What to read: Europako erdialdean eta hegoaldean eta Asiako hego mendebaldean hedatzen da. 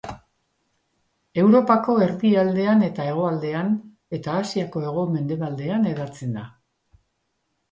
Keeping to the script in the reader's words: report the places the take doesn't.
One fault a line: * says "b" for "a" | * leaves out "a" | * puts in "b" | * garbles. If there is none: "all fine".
all fine